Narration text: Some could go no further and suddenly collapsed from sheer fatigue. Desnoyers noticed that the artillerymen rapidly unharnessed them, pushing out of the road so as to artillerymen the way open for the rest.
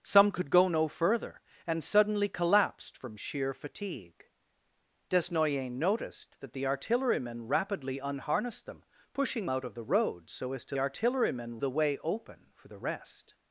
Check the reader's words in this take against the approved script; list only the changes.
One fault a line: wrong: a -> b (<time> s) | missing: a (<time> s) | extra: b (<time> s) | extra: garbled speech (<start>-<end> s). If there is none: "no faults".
no faults